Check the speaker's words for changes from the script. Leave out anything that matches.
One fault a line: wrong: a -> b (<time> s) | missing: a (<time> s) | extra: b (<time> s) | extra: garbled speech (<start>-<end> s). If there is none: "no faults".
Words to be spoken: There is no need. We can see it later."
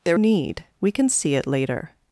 missing: is no (0.2 s)